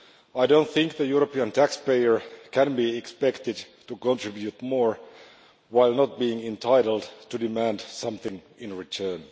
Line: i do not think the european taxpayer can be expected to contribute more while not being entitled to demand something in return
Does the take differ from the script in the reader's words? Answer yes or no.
no